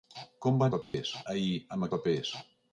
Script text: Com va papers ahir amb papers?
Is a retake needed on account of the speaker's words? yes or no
no